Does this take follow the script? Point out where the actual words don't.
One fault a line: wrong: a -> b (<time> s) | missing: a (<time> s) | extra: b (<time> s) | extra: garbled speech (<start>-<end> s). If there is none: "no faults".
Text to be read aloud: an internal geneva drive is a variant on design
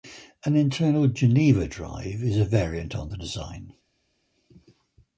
extra: the (3.1 s)